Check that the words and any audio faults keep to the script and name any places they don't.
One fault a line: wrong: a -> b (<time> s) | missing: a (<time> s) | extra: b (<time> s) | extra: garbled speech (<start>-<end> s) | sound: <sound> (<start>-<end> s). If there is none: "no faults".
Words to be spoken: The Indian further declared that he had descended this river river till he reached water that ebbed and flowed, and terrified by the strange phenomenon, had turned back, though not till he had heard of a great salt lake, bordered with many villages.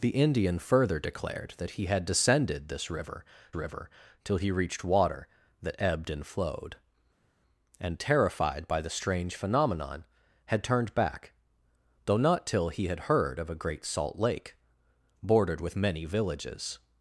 no faults